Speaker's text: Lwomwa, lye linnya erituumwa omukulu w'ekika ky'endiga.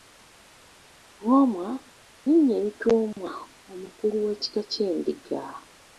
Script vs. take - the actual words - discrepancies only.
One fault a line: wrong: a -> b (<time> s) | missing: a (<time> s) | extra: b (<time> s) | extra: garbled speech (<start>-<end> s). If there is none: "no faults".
missing: lye (1.7 s)